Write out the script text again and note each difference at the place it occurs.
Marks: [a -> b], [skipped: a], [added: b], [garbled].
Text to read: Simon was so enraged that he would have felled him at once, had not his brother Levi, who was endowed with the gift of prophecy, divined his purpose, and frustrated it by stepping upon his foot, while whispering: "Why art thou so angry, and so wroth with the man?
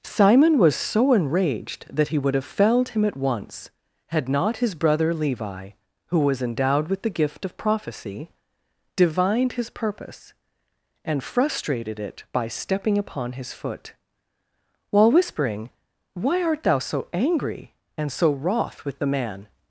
Simon was so enraged that he would have felled him at once, had not his brother Levi, who was endowed with the gift of prophecy, divined his purpose, and frustrated it by stepping upon his foot, while whispering: "Why art thou so angry, and so wroth with the man?